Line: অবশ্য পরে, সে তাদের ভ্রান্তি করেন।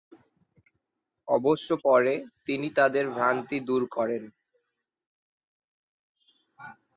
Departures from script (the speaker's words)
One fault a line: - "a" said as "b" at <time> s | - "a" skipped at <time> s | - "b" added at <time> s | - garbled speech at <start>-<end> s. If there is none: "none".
- "সে" said as "তিনি" at 2.5 s
- "দূর" added at 3.6 s